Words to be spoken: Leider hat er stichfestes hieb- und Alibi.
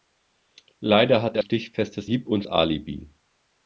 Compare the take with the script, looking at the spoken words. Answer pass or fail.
pass